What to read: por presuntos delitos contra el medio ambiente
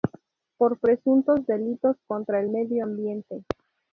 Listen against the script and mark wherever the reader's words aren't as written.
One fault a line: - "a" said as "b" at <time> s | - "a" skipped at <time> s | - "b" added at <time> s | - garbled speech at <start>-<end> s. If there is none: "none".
none